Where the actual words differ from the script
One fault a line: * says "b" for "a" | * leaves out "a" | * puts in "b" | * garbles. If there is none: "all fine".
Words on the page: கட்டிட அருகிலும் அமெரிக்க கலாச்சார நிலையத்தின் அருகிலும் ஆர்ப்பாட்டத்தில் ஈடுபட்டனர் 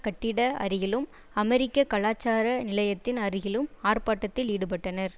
all fine